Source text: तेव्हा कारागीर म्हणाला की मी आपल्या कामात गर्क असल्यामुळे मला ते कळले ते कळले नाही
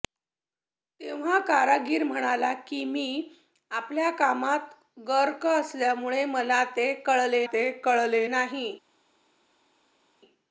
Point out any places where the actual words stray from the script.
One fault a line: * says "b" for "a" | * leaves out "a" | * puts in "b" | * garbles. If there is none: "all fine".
all fine